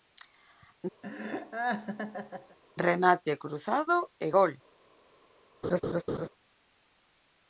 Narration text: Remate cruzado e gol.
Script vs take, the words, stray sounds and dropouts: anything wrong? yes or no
yes